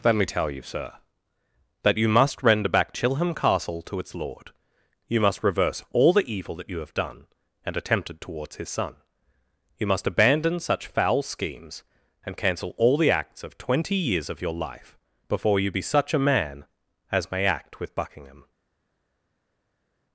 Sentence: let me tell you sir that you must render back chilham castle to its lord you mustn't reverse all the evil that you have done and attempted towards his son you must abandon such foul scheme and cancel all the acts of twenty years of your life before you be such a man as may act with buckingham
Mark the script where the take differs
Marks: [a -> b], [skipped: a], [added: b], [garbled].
let me tell you sir that you must render back chilham castle to its lord you [mustn't -> must] reverse all the evil that you have done and attempted towards his son you must abandon such foul [scheme -> schemes] and cancel all the acts of twenty years of your life before you be such a man as may act with buckingham